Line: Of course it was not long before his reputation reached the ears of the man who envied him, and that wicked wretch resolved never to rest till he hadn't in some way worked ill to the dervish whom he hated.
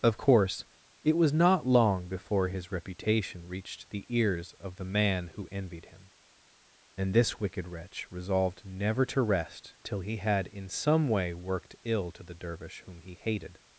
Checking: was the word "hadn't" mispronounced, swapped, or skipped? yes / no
yes